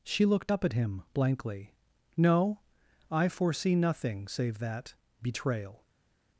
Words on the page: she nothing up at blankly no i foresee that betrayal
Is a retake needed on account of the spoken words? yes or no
yes